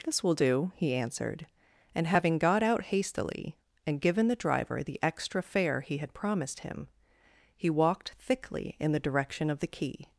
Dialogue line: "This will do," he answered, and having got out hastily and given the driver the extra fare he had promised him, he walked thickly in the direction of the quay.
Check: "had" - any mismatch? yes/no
no